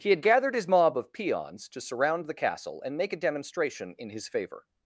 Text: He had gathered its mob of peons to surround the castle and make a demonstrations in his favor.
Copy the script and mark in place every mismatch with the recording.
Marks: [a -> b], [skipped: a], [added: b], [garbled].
He had gathered [its -> his] mob of peons to surround the castle and make a [demonstrations -> demonstration] in his favor.